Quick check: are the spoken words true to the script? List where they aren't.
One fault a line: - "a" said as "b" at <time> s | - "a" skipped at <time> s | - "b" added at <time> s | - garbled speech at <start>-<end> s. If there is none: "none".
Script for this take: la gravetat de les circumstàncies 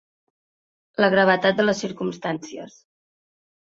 none